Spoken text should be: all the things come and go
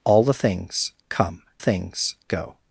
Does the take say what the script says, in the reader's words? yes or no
no